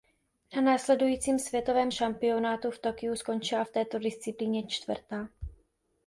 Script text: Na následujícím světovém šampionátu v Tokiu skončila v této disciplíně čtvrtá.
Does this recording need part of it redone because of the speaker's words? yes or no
no